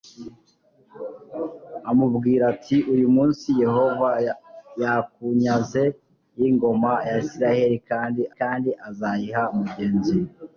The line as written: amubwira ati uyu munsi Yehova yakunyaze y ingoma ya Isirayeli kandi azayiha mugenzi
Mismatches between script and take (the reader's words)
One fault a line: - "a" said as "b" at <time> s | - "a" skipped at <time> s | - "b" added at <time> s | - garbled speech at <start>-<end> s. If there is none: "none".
- "kandi" added at 8.4 s